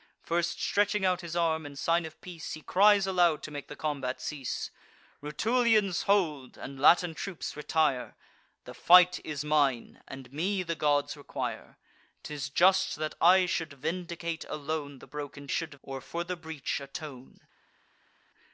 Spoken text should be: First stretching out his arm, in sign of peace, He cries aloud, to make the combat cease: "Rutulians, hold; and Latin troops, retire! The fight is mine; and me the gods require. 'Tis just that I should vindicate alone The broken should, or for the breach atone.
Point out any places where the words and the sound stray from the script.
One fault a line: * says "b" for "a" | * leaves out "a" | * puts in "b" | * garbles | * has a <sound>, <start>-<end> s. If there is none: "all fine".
all fine